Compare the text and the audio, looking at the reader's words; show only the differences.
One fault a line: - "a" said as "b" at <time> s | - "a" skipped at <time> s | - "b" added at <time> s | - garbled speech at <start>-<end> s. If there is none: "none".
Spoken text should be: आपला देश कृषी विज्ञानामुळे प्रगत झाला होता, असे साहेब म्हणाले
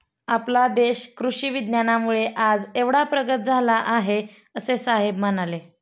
- "आज एवढा" added at 2.4 s
- "होता" said as "आहे" at 3.9 s